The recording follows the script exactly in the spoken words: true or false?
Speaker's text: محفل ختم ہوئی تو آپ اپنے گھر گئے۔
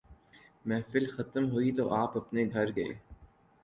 true